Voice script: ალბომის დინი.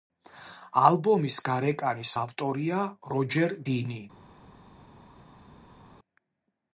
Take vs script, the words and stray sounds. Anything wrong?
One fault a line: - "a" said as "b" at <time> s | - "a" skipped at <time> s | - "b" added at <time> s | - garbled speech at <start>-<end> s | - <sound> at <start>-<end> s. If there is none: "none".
- "გარეკანის ავტორია როჯერ" added at 1.5 s